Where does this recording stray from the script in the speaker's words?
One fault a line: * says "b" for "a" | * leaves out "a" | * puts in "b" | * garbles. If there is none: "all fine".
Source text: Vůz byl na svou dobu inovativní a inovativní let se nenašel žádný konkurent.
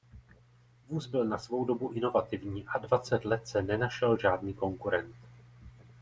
* says "dvacet" for "inovativní"